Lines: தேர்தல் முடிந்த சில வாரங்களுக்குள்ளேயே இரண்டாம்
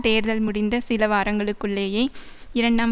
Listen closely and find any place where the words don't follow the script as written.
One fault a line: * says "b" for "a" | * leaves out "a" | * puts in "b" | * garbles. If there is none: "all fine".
all fine